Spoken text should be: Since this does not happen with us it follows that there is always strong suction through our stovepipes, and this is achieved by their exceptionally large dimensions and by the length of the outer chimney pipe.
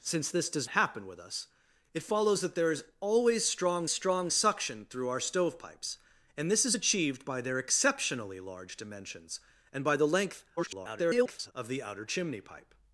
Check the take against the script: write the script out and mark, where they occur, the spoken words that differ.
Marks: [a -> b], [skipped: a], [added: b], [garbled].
Since this does [skipped: not] happen with us it follows that there is always strong [added: strong] suction through our stovepipes, and this is achieved by their exceptionally large dimensions and by the length [garbled] of the outer chimney pipe.